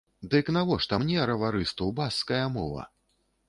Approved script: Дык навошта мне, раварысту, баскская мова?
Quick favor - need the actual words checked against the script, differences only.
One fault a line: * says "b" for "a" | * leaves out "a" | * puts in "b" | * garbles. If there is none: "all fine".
all fine